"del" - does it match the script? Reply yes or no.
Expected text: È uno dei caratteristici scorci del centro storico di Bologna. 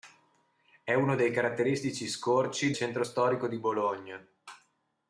no